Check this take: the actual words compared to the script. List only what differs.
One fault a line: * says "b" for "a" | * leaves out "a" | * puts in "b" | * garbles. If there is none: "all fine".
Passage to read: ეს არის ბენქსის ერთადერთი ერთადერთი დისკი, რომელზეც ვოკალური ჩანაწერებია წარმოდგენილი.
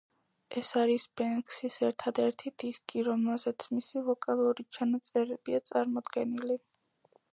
* leaves out "ერთადერთი"
* puts in "მისი"